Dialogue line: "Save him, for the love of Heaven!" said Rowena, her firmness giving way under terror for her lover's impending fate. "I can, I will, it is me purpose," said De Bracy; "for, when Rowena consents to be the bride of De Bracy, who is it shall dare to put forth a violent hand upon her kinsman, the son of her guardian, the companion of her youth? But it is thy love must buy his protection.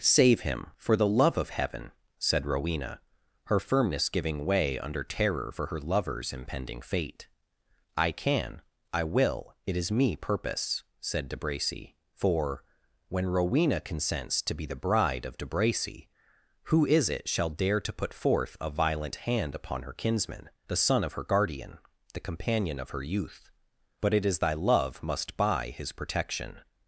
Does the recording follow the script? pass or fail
pass